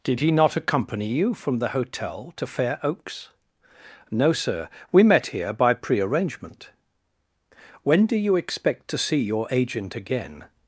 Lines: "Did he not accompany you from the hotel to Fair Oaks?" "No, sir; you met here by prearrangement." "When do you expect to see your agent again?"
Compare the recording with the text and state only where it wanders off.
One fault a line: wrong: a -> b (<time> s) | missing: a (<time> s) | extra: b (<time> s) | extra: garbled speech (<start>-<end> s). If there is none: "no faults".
wrong: you -> we (4.9 s)